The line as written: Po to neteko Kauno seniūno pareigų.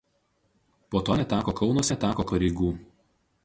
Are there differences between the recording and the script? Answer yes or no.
yes